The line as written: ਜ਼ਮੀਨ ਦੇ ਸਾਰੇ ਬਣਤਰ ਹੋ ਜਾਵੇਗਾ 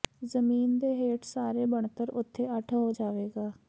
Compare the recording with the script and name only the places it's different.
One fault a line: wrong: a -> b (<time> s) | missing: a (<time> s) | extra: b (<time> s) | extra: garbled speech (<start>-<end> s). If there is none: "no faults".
extra: ਹੇਠ (0.9 s)
extra: ਉਥੇ ਅੱਠ (2.1 s)